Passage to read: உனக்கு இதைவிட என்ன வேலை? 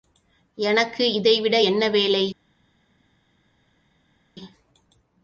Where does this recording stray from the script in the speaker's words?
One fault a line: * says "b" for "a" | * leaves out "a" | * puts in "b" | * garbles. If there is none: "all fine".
* says "எனக்கு" for "உனக்கு"